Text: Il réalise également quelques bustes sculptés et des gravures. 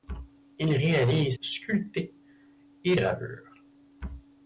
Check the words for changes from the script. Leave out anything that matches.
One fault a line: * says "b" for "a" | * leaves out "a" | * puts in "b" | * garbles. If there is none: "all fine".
* leaves out "également quelques bustes"
* leaves out "des"